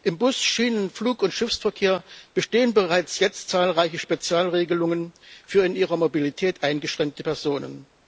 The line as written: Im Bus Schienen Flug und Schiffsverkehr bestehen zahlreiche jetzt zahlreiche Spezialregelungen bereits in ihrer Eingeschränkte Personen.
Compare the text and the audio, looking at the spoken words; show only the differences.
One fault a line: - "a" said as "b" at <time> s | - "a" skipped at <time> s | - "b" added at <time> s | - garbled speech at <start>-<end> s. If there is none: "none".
- "zahlreiche" said as "bereits" at 2.7 s
- "bereits" said as "für" at 5.5 s
- "Mobilität" added at 6.0 s